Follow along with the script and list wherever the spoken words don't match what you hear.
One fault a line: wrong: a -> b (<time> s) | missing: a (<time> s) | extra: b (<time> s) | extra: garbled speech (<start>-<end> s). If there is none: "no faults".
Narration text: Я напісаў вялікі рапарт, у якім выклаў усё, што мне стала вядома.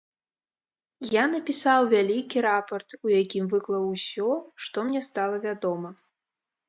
no faults